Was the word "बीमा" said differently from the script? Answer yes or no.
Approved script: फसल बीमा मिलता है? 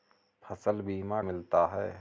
no